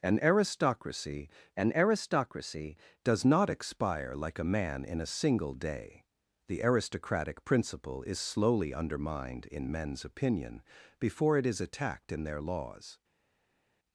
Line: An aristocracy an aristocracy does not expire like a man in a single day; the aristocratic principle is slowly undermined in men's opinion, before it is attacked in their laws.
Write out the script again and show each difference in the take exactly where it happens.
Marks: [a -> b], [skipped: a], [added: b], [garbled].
An aristocracy an aristocracy does not expire like a man in a single day; the aristocratic principle is slowly undermined in men's opinion, before it is attacked in their laws.